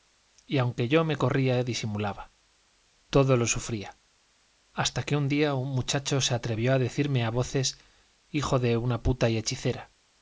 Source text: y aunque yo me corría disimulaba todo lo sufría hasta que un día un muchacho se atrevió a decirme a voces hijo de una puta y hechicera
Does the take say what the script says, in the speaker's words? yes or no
yes